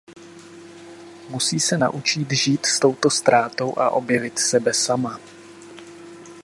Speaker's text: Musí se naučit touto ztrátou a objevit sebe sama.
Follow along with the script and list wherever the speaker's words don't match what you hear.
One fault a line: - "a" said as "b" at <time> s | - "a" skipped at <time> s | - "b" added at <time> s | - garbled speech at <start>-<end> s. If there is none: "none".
- "žít s" added at 2.3 s